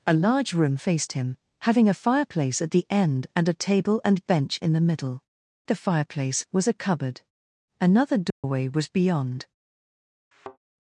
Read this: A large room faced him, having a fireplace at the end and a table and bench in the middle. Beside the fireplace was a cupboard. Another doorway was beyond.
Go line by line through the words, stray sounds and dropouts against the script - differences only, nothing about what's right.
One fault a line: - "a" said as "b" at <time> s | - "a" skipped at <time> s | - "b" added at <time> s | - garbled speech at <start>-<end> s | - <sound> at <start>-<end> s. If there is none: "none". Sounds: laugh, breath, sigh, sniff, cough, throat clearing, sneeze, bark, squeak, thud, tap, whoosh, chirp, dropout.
- "Beside" skipped at 5.2 s
- dropout at 8.3-8.4 s
- thud at 10.3-10.6 s